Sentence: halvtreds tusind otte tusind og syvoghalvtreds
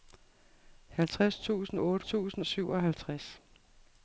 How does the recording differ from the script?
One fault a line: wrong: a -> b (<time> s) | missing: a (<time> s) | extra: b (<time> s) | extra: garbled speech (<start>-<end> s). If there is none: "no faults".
no faults